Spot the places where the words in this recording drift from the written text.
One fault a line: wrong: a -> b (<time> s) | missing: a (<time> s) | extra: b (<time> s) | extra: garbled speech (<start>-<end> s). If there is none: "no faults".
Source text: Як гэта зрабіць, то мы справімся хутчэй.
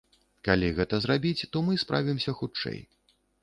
wrong: Як -> Калі (0.5 s)